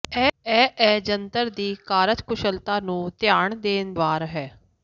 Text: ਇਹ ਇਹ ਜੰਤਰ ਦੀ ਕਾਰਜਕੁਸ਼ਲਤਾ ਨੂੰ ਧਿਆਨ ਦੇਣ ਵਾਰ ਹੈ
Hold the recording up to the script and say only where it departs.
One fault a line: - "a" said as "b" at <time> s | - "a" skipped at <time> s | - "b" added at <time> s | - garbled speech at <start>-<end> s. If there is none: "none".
none